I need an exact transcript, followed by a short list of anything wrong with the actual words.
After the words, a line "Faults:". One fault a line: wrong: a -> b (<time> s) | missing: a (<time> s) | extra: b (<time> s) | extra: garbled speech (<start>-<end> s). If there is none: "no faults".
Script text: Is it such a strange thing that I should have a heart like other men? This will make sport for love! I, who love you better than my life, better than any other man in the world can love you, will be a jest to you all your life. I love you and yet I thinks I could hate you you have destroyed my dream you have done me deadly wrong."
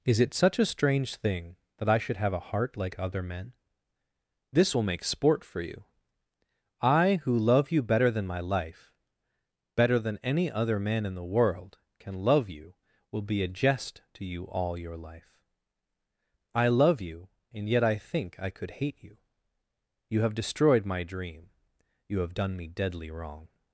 Is it such a strange thing that I should have a heart like other men? This will make sport for you! I, who love you better than my life, better than any other man in the world can love you, will be a jest to you all your life. I love you and yet I think I could hate you you have destroyed my dream you have done me deadly wrong."
Faults:
wrong: love -> you (5.6 s)
wrong: thinks -> think (18.0 s)